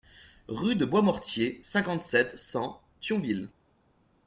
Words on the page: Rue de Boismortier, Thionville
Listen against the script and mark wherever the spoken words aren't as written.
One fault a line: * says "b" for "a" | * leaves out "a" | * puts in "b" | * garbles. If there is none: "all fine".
* puts in "cinquante sept cent"